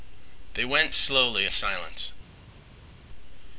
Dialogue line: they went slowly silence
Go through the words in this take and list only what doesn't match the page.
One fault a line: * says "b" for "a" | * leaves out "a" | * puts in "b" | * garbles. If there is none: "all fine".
all fine